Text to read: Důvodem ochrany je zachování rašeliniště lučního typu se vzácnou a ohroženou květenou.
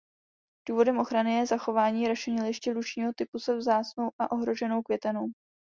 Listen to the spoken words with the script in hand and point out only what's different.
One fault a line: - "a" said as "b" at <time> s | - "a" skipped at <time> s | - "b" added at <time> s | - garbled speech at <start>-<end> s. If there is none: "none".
none